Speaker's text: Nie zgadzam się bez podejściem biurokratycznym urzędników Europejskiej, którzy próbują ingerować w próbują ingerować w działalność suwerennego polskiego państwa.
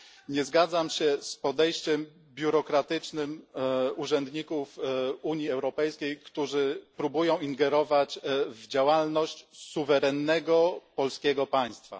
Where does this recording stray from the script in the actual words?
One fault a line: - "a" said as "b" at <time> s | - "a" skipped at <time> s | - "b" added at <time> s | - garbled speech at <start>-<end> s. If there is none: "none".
- "bez" said as "z" at 1.2 s
- "Unii" added at 5.2 s
- "próbują ingerować w" skipped at 8.7 s